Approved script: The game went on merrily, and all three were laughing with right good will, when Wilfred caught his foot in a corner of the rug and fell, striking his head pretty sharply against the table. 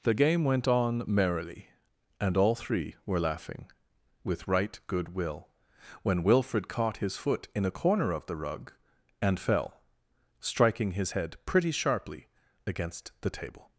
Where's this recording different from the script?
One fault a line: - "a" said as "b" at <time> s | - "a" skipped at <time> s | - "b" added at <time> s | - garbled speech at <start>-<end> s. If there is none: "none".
none